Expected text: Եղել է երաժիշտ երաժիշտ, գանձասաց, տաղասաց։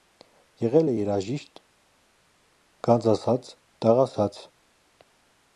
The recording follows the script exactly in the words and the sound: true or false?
false